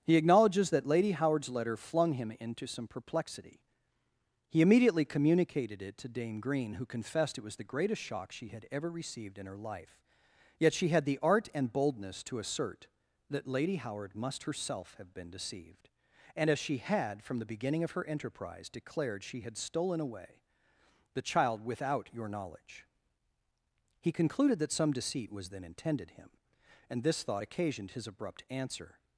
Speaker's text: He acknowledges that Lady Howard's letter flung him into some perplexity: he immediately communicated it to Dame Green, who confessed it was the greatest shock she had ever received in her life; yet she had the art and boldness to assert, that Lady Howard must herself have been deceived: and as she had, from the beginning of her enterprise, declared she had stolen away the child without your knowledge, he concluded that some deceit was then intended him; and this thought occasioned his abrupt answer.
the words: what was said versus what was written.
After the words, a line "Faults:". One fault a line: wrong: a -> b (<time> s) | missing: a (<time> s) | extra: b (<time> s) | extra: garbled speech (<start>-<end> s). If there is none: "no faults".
He acknowledges that Lady Howard's letter flung him into some perplexity: he immediately communicated it to Dame Green, who confessed it was the greatest shock she had ever received in her life; yet she had the art and boldness to assert, that Lady Howard must herself have been deceived: and as she had, from the beginning of her enterprise, declared she had stolen away the child without your knowledge, he concluded that some deceit was then intended him; and this thought occasioned his abrupt answer.
Faults:
no faults